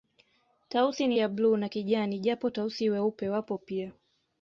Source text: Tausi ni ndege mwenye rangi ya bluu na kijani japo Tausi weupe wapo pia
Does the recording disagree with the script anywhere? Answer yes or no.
yes